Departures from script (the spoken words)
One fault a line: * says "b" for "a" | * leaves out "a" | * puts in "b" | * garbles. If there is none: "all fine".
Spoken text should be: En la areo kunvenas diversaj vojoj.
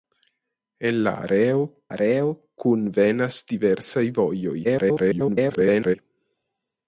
* puts in "areo"
* garbles